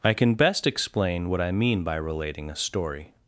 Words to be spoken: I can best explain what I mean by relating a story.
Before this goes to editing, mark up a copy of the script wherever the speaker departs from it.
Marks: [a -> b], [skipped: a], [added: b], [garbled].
I can best explain what I mean by relating a story.